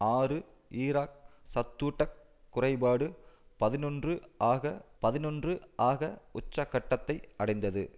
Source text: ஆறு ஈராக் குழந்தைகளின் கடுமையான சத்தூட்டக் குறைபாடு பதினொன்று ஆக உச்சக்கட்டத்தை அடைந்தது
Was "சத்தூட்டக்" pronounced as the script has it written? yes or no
no